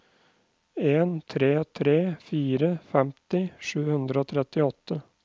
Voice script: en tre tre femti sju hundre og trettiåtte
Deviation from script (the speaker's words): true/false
true